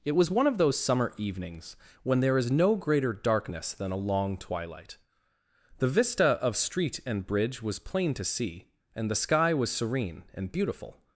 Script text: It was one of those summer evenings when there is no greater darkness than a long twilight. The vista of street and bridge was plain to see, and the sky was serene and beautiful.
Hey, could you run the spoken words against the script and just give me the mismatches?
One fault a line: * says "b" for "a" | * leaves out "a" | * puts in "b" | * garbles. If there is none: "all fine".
all fine